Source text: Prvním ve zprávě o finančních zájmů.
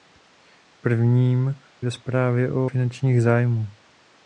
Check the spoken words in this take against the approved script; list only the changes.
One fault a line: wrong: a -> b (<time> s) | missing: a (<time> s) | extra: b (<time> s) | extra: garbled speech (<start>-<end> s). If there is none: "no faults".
no faults